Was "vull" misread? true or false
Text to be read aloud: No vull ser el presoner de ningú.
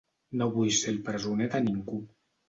false